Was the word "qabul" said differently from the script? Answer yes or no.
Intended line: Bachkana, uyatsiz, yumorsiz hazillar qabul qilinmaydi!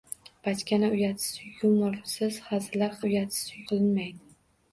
yes